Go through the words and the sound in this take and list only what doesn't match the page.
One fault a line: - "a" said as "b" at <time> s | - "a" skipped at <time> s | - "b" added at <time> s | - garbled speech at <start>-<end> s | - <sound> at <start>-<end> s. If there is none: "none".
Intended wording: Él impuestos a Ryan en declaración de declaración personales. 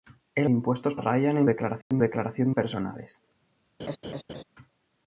- dropout at 1.8-1.9 s
- laugh at 3.8-4.4 s